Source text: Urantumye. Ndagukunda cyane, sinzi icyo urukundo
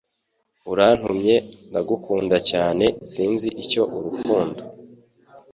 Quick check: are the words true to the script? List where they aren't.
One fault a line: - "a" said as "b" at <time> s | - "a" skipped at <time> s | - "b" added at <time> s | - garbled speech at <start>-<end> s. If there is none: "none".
none